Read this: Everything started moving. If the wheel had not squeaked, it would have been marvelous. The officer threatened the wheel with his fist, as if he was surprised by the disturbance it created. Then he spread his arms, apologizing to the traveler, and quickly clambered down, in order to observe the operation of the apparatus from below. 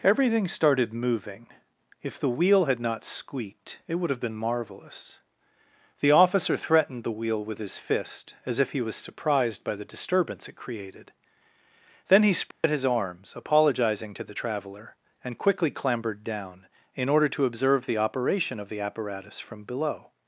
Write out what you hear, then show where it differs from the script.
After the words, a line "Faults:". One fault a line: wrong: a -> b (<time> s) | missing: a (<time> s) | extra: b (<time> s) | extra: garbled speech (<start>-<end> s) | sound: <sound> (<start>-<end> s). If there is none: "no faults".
Everything started moving. If the wheel had not squeaked, it would have been marvelous. The officer threatened the wheel with his fist, as if he was surprised by the disturbance it created. Then he spread his arms, apologizing to the traveler, and quickly clambered down, in order to observe the operation of the apparatus from below.
Faults:
sound: dropout (12.5-12.6 s)